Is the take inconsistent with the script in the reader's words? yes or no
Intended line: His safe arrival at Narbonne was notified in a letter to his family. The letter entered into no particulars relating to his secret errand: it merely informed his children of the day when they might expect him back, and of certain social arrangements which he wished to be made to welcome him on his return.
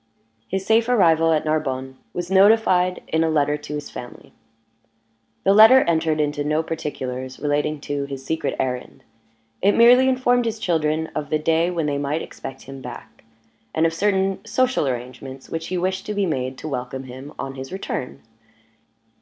no